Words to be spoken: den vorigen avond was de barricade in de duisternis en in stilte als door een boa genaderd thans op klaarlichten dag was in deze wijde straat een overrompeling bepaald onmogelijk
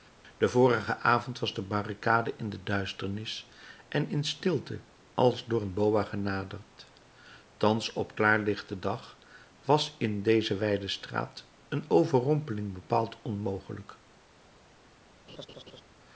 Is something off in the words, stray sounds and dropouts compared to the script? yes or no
yes